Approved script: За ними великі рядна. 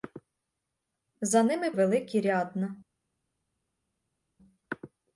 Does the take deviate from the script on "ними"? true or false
false